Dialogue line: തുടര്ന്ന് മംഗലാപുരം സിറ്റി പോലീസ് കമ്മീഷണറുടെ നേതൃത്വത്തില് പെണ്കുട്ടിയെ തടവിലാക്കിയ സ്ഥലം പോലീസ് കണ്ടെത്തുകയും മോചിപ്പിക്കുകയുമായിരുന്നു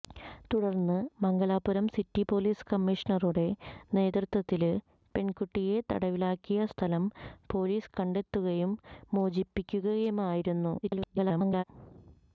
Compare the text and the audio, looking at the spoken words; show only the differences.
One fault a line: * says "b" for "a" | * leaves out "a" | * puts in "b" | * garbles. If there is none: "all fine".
* garbles